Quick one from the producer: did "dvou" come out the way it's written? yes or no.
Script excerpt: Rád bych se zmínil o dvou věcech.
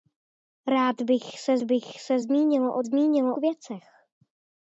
no